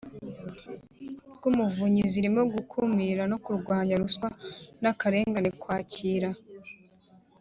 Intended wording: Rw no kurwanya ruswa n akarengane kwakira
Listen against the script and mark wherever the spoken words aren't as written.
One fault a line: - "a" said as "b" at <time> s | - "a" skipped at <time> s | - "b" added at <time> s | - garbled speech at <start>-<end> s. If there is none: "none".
- "umuvunyi zirimo gukumira" added at 1.5 s